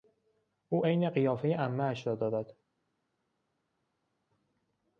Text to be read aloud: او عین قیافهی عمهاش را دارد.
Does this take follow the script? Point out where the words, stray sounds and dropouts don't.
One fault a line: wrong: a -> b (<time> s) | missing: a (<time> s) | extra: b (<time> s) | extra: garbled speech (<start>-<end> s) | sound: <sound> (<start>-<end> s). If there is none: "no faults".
no faults